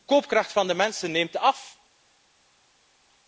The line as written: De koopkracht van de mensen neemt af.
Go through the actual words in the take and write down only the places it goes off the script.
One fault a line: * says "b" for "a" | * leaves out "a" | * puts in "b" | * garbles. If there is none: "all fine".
all fine